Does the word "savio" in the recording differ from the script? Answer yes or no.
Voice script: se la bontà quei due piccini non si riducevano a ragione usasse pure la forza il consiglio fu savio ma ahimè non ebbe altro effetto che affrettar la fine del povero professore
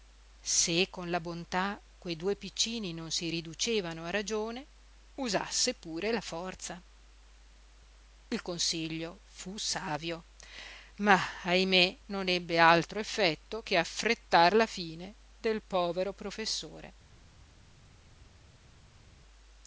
no